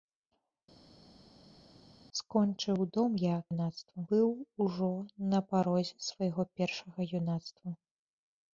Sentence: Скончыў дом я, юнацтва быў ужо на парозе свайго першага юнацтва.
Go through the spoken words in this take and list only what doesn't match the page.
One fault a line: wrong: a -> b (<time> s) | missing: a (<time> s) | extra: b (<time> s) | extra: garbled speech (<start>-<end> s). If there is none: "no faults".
no faults